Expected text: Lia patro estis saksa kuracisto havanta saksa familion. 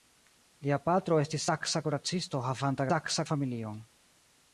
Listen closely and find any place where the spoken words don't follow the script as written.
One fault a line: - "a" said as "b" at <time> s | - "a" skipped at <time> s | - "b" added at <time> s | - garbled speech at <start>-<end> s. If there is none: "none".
none